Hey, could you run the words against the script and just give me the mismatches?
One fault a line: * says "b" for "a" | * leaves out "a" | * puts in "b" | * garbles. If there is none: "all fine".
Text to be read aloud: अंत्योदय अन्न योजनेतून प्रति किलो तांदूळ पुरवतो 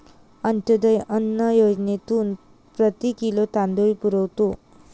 all fine